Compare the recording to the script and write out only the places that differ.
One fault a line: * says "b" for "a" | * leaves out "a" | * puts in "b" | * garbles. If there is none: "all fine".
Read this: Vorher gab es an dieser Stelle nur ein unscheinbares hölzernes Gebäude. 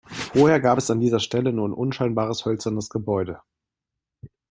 all fine